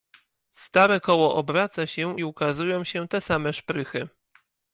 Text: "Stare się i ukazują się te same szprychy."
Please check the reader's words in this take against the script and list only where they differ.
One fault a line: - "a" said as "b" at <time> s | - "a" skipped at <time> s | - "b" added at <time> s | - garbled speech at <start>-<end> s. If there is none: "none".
- "koło obraca" added at 1.0 s